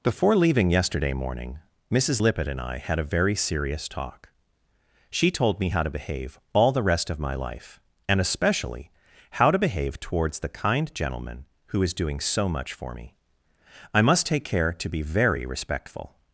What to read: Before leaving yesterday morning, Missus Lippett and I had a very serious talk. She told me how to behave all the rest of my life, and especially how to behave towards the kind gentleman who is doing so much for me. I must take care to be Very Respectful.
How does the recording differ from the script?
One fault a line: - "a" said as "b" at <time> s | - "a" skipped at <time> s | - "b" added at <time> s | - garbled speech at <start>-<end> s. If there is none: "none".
none